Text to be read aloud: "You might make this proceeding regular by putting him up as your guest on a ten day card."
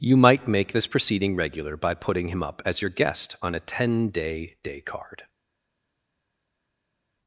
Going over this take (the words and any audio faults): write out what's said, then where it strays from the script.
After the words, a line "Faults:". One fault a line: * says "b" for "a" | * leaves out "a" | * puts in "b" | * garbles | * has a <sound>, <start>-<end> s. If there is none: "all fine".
"You might make this proceeding regular by putting him up as your guest on a ten day day card."
Faults:
* puts in "day"